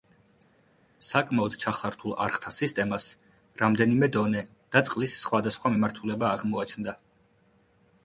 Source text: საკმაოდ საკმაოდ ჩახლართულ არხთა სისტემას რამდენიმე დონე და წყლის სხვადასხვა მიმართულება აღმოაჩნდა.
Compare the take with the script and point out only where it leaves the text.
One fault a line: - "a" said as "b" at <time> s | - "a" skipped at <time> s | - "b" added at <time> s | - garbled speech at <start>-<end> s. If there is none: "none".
- "საკმაოდ" skipped at 1.5 s